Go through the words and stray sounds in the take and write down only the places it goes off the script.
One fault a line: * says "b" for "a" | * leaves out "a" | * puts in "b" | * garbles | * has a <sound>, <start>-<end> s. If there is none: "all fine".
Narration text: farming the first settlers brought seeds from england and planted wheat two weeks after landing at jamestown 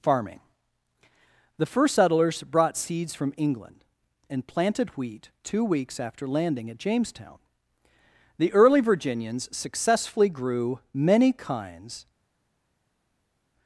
* puts in "the early virginians successfully grew many kinds"